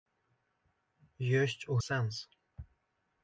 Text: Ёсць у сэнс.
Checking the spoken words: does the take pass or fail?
pass